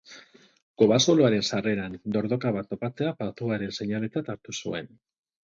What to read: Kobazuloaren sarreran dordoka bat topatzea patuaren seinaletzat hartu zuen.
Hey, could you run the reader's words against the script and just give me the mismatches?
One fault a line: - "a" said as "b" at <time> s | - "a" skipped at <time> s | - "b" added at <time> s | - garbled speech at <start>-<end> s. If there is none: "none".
none